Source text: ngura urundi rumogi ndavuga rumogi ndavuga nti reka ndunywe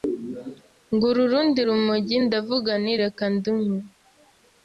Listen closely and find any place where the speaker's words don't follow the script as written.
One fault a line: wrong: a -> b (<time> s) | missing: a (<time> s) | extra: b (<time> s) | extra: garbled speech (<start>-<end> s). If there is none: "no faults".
missing: rumogi ndavuga (2.7 s)